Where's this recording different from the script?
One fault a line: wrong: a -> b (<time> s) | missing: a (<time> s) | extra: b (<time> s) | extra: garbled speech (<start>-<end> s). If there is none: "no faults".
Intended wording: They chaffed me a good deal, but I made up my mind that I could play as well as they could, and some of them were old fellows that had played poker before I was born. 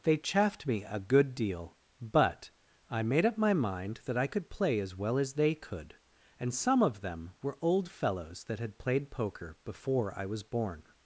no faults